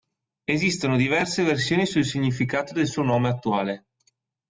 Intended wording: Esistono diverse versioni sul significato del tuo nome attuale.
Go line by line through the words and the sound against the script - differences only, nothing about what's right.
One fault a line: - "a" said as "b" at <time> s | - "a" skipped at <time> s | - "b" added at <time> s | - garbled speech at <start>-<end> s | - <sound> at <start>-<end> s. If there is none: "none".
- "tuo" said as "suo" at 2.9 s